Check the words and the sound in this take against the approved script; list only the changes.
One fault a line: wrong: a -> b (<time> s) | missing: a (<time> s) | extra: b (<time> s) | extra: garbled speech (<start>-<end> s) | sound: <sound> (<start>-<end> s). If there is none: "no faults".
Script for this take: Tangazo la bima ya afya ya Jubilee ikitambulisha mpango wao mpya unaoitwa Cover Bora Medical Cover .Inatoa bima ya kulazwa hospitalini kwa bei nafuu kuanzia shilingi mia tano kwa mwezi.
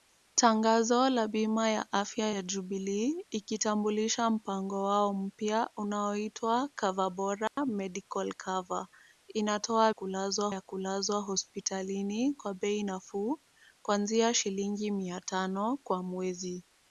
sound: dropout (7.5-7.6 s)
wrong: bima -> kulazwa (9.9 s)